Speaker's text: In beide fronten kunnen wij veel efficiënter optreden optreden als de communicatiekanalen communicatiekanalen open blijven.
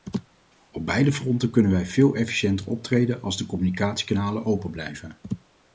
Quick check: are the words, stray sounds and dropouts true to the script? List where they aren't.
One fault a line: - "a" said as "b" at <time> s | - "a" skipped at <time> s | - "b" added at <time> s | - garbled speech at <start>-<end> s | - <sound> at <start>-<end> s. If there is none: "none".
- "In" said as "Op" at 0.7 s
- "optreden" skipped at 3.2 s
- "communicatiekanalen" skipped at 4.5 s